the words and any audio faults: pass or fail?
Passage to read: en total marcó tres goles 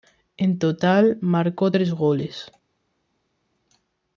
pass